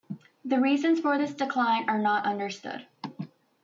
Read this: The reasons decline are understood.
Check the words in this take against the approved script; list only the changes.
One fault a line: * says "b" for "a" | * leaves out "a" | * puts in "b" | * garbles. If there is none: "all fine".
* puts in "for this"
* puts in "not"